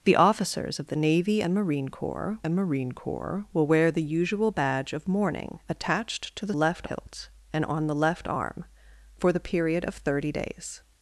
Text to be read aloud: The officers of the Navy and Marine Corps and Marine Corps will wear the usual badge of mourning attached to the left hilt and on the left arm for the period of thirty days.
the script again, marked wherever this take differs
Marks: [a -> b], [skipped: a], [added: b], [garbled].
The officers of the Navy and Marine Corps and Marine Corps will wear the usual badge of mourning attached to the left hilt and on the left arm for the period of thirty days.